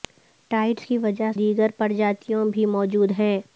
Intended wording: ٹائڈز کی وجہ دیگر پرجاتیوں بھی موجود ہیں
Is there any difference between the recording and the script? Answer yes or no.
no